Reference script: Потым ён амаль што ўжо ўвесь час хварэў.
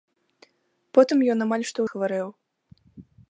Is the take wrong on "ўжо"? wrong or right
wrong